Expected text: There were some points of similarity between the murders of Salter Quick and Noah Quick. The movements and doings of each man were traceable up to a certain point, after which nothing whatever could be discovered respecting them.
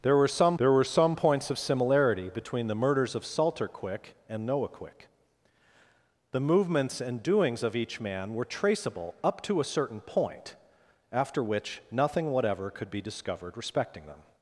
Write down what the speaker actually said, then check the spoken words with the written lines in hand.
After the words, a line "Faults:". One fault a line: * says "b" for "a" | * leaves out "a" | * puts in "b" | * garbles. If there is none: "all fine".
There were some there were some points of similarity between the murders of Salter Quick and Noah Quick. The movements and doings of each man were traceable up to a certain point, after which nothing whatever could be discovered respecting them.
Faults:
* puts in "there were some"